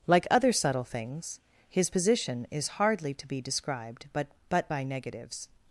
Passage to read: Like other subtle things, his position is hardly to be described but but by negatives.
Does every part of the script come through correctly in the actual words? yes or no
yes